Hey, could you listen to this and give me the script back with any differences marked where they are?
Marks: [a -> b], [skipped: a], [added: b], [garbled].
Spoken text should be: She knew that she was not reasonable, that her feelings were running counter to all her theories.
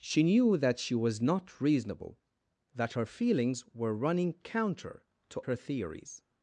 She knew that she was not reasonable, that her feelings were running counter to [skipped: all] her theories.